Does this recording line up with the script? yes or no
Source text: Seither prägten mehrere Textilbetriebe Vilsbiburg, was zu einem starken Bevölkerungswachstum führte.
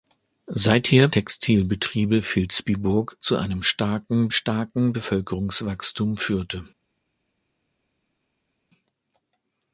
no